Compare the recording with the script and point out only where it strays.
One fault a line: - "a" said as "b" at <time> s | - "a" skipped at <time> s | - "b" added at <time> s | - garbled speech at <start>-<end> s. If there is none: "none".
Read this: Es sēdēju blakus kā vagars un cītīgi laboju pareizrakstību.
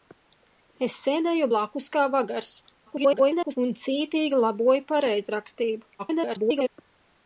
- garbled speech at 2.9-3.6 s
- garbled speech at 6.0-6.7 s